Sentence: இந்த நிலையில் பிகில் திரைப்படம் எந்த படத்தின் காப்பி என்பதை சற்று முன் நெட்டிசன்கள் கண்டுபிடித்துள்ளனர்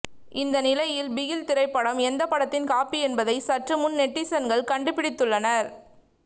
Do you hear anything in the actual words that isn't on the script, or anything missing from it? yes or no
no